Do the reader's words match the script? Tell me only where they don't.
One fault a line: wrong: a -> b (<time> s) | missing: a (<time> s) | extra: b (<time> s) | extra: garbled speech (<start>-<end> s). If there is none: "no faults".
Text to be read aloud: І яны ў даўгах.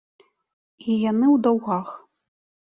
no faults